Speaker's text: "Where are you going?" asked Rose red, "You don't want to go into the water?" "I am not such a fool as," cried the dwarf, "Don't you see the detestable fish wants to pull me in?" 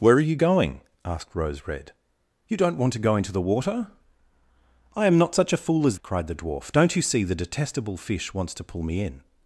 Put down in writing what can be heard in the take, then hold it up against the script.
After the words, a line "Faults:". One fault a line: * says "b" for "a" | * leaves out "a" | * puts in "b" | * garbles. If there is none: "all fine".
"Where are you going?" asked Rose red, "You don't want to go into the water?" "I am not such a fool as," cried the dwarf, "Don't you see the detestable fish wants to pull me in?"
Faults:
all fine